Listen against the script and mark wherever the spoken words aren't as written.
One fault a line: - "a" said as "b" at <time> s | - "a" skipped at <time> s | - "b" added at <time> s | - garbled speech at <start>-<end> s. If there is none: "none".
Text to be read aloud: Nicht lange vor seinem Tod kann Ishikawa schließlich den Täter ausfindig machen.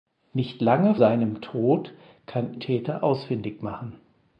- "vor" skipped at 0.9 s
- "Ishikawa schließlich den" skipped at 2.6 s